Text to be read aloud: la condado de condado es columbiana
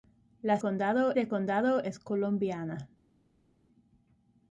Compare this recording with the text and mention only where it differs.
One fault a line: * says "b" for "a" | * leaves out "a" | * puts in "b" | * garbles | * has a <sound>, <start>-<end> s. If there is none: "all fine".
all fine